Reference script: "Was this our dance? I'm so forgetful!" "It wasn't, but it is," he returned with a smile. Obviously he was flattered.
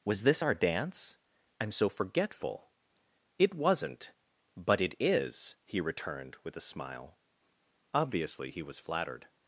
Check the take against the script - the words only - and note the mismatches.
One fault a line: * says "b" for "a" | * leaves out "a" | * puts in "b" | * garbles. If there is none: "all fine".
all fine